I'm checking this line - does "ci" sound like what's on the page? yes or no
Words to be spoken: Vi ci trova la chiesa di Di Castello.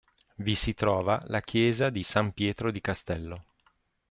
no